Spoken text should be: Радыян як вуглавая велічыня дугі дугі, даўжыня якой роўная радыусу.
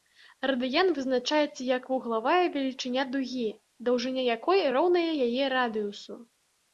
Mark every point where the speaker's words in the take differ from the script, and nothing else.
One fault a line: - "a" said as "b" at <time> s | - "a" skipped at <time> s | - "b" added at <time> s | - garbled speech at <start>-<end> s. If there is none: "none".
- "вызначаецца" added at 1.0 s
- "дугі" skipped at 3.4 s
- "яе" added at 5.3 s